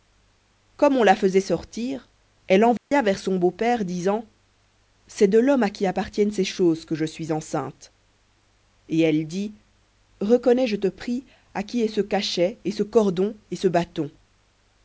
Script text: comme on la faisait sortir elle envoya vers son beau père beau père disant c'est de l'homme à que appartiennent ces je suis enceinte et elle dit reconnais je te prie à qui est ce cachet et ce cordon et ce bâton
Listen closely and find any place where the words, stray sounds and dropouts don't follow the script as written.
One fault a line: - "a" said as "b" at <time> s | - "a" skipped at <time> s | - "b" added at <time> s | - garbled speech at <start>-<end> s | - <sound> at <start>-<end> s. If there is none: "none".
- dropout at 2.8-2.9 s
- "beau père" skipped at 3.9 s
- "que" said as "qui" at 5.7 s
- "choses que" added at 6.4 s